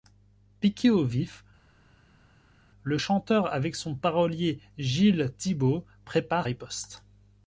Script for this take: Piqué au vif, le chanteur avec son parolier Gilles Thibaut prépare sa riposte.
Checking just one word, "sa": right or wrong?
wrong